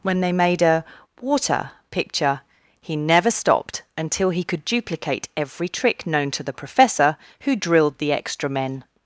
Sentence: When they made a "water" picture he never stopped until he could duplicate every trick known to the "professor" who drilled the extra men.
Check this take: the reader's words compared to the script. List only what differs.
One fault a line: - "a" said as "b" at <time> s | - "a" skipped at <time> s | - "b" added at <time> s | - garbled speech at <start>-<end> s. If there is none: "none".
none